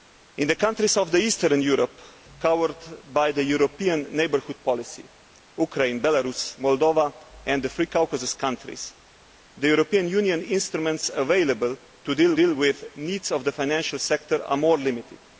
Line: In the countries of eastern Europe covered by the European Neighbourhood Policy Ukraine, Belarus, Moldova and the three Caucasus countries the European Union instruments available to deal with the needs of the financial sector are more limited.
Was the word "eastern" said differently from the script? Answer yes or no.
no